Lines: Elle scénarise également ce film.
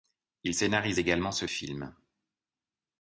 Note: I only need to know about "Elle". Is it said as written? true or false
false